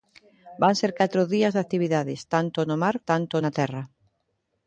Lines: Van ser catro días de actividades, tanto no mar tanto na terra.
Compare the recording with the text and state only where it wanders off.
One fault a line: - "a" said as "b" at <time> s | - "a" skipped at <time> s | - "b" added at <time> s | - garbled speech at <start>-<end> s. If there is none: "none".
none